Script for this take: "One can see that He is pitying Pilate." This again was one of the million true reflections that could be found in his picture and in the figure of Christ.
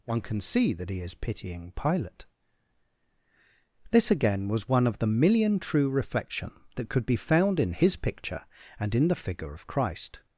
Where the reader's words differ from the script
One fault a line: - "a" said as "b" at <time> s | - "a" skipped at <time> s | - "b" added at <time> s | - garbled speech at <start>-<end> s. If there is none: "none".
- "reflections" said as "reflection" at 5.9 s